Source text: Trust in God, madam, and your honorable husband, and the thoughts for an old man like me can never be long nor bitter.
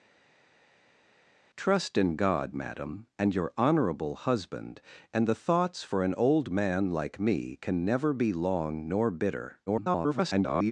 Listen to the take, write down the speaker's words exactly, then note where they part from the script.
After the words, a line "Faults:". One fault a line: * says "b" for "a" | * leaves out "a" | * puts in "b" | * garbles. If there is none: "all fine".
Trust in God, madam, and your honorable husband, and the thoughts for an old man like me can never be long nor bitter. [garbled]
Faults:
* garbles